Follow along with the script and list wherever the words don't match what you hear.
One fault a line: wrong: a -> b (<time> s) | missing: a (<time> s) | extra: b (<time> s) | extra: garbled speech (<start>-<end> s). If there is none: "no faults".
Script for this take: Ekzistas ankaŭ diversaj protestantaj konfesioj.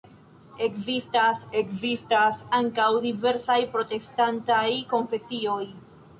extra: ekzistas (1.6 s)